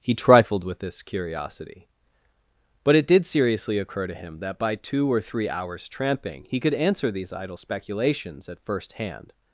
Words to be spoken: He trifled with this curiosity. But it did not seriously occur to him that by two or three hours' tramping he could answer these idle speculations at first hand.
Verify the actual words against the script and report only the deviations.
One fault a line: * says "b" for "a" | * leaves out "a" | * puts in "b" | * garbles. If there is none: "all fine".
* leaves out "not"